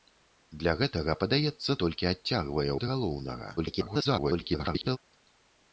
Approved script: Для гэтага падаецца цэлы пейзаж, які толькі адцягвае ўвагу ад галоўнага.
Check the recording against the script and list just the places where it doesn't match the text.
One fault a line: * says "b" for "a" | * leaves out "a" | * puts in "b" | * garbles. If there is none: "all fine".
* leaves out "цэлы пейзаж які"
* leaves out "ўвагу"
* garbles